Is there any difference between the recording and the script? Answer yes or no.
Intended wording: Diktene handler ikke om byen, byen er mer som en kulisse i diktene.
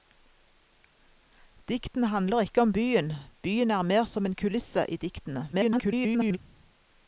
yes